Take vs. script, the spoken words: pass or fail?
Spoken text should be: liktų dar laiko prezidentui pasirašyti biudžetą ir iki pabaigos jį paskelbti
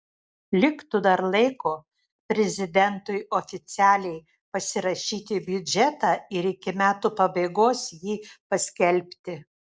fail